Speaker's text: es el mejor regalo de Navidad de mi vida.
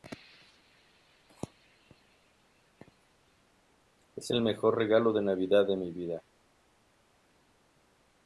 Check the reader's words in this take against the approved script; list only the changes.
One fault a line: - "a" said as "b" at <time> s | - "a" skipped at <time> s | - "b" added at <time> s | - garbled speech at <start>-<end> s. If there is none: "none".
none